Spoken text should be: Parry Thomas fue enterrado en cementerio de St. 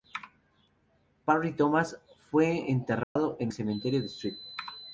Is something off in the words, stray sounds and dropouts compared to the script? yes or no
yes